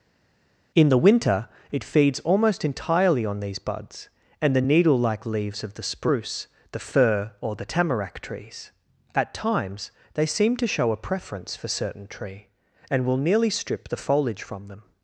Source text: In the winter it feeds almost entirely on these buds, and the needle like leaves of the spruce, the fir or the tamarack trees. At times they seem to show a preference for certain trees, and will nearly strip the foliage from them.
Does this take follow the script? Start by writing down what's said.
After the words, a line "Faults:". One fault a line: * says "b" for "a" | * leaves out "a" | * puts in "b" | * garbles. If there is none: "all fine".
In the winter it feeds almost entirely on these buds, and the needle like leaves of the spruce, the fir or the tamarack trees. At times they seem to show a preference for certain tree, and will nearly strip the foliage from them.
Faults:
* says "tree" for "trees"